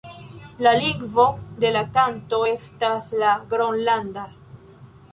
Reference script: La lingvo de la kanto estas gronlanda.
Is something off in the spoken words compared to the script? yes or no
yes